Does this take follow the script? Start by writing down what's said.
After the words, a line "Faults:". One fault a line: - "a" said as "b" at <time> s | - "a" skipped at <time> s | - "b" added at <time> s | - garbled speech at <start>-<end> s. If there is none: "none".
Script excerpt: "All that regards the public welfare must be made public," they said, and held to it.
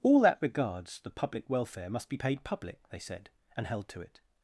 "All that regards the public welfare must be paid public," they said, and held to it.
Faults:
- "made" said as "paid" at 2.2 s